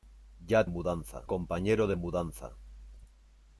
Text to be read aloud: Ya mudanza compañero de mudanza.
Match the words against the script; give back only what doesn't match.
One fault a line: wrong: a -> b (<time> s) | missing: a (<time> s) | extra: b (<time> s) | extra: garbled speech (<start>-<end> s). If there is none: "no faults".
no faults